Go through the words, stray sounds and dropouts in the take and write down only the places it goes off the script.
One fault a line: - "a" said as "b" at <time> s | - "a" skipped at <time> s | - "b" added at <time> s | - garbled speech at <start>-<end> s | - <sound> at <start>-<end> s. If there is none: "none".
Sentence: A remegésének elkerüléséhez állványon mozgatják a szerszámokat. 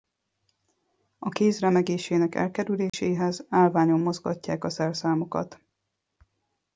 - "kéz" added at 1.3 s
- dropout at 2.9-2.9 s